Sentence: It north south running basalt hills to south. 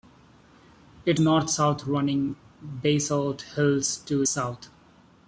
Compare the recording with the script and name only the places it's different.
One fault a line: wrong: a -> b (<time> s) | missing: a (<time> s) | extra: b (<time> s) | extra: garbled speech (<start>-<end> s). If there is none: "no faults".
no faults